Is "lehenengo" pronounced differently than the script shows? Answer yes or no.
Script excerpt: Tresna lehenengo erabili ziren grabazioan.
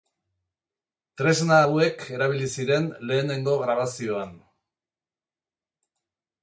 yes